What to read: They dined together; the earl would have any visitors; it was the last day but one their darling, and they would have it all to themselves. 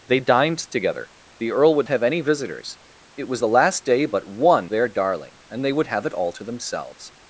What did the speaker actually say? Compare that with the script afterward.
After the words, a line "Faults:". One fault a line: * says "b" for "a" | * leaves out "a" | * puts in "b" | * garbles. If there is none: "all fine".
They dined together; the earl would have any visitors; it was the last day but one their darling, and they would have it all to themselves.
Faults:
all fine